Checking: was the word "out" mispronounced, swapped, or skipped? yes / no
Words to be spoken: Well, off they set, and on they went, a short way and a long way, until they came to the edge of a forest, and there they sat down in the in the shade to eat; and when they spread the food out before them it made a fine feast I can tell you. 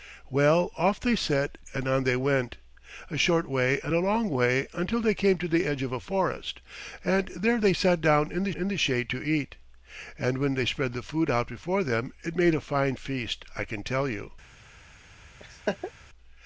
no